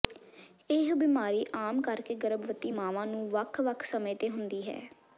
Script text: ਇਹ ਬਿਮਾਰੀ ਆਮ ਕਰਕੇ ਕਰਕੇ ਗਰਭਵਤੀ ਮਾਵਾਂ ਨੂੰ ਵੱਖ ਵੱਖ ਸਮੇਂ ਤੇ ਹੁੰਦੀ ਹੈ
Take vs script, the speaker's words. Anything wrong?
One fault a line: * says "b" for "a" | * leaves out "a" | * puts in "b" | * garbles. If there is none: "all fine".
* leaves out "ਕਰਕੇ"